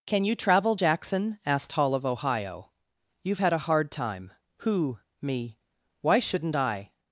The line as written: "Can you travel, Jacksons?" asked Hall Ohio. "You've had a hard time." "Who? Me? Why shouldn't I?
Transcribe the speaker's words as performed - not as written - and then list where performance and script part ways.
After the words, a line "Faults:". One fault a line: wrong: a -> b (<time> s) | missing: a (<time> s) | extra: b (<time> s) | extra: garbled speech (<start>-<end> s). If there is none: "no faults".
"Can you travel, Jackson?" asked Hall of Ohio. "You've had a hard time." "Who? Me? Why shouldn't I?
Faults:
wrong: Jacksons -> Jackson (0.7 s)
extra: of (1.9 s)